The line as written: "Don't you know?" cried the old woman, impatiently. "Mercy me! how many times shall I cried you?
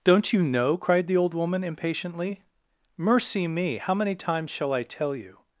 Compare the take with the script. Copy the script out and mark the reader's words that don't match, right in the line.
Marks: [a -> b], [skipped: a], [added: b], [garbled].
"Don't you know?" cried the old woman, impatiently. "Mercy me! how many times shall I [cried -> tell] you?